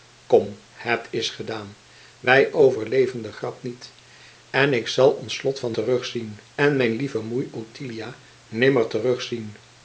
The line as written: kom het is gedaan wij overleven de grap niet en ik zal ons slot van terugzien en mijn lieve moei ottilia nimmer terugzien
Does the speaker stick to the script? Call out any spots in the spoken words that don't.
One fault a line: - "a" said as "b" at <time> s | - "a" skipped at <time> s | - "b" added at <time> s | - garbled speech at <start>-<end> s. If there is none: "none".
none